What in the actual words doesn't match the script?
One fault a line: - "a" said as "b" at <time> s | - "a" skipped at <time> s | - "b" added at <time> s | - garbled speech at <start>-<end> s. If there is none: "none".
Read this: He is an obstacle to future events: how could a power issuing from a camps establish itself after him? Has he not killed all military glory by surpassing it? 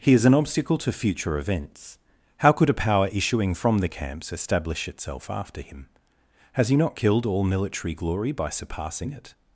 - "a" said as "the" at 3.8 s